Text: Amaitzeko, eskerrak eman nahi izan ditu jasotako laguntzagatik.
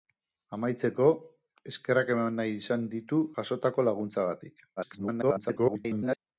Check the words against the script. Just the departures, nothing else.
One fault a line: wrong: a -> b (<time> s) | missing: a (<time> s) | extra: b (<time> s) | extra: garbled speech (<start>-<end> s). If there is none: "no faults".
extra: garbled speech (4.8-6.2 s)